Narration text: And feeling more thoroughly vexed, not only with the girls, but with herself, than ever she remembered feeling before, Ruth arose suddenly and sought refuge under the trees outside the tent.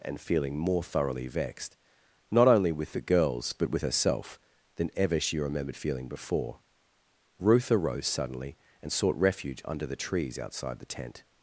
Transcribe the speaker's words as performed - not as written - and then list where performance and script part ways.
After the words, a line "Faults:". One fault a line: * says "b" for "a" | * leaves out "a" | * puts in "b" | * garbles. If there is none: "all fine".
And feeling more thoroughly vexed, not only with the girls, but with herself, than ever she remembered feeling before, Ruth arose suddenly and sought refuge under the trees outside the tent.
Faults:
all fine